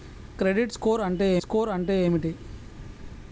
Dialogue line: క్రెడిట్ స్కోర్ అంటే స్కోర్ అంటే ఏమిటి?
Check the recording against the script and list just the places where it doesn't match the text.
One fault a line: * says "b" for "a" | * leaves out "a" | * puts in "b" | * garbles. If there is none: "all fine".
all fine